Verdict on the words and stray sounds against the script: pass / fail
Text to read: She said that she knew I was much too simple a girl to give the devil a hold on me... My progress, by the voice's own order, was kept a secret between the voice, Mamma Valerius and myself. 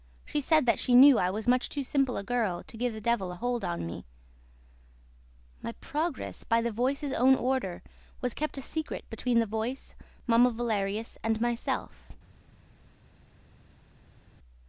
pass